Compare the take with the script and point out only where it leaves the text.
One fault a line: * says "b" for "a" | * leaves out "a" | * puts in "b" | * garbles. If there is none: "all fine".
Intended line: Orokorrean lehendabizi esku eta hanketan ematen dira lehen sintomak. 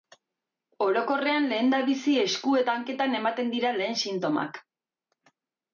all fine